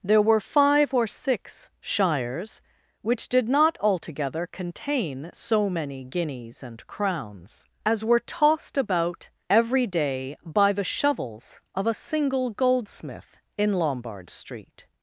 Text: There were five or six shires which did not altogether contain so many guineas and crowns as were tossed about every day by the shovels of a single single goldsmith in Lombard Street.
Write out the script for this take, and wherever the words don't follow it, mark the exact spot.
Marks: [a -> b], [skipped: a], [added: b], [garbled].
There were five or six shires which did not altogether contain so many guineas and crowns as were tossed about every day by the shovels of a single [skipped: single] goldsmith in Lombard Street.